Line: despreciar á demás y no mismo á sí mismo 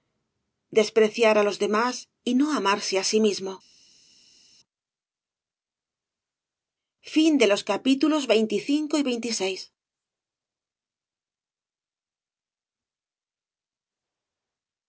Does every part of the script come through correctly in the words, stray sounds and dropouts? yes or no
no